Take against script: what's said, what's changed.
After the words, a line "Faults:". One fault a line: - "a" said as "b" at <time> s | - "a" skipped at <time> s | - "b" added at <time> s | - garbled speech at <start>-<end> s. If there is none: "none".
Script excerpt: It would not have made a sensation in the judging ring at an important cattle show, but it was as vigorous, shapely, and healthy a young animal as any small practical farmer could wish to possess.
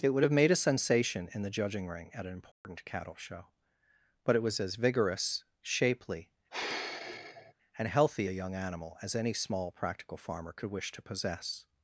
It would have made a sensation in the judging ring at an important cattle show, but it was as vigorous, shapely, and healthy a young animal as any small practical farmer could wish to possess.
Faults:
- "not" skipped at 0.2 s